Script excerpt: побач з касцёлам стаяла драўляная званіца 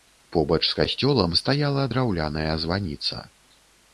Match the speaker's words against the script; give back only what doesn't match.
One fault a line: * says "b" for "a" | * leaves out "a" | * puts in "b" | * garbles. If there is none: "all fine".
all fine